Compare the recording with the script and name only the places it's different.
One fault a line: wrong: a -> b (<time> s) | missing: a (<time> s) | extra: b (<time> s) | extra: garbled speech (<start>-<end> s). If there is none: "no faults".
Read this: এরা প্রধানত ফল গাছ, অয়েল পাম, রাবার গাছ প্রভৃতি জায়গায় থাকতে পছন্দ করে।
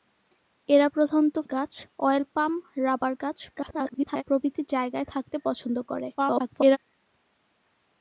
missing: ফল (1.4 s)
extra: garbled speech (3.5-4.2 s)
extra: garbled speech (6.2-6.8 s)